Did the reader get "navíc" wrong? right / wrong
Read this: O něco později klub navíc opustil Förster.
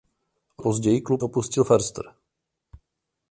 wrong